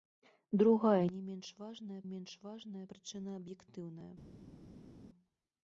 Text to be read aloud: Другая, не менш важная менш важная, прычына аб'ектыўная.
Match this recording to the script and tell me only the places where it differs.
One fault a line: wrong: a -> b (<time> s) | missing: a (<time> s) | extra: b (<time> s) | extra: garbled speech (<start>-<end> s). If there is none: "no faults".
no faults